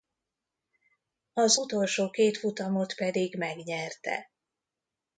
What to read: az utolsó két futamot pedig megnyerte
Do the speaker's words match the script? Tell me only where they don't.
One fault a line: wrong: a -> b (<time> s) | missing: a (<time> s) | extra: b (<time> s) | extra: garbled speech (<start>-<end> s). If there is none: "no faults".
no faults